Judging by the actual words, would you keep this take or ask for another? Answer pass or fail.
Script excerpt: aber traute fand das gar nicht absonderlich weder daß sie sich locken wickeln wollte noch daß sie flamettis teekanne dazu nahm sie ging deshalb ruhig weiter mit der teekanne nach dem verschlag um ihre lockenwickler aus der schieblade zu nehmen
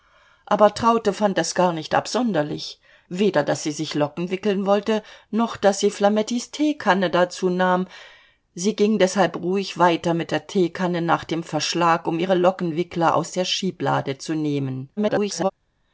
fail